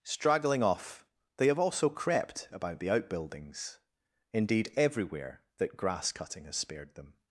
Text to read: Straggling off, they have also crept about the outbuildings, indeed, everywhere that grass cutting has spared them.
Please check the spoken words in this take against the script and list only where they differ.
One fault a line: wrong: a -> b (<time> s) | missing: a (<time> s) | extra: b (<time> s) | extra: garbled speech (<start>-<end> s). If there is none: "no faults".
no faults